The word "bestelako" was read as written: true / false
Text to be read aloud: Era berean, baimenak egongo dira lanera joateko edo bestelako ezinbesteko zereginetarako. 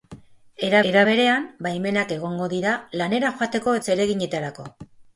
false